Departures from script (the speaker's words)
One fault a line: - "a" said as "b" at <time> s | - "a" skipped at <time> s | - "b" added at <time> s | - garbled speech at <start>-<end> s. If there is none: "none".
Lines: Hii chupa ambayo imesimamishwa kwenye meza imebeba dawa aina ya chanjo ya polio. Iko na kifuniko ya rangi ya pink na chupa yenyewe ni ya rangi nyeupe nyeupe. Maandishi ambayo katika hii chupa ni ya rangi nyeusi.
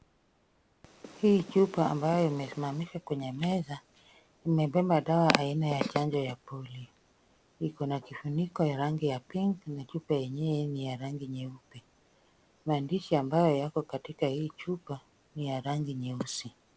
- "nyeupe" skipped at 11.8 s
- "yako" added at 13.6 s